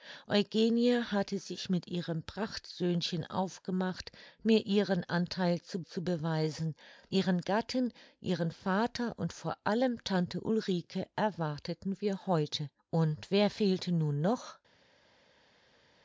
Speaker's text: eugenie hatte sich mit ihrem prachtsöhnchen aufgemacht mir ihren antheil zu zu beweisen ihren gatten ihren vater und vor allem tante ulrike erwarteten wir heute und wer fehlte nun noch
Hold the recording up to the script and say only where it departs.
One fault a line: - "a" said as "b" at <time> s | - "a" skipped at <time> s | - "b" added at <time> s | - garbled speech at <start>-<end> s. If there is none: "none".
none